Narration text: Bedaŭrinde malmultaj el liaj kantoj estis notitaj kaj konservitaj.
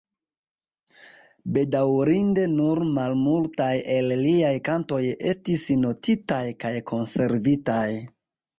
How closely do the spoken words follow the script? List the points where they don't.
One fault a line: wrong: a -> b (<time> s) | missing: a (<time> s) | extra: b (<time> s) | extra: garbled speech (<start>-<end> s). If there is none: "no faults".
extra: nur (2.5 s)